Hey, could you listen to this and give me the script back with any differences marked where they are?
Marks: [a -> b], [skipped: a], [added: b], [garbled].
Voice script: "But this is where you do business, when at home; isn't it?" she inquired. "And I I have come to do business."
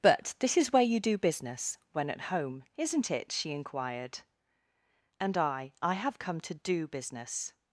"But this is where you do business, when at home; isn't it?" she inquired. "And I I have come to do business."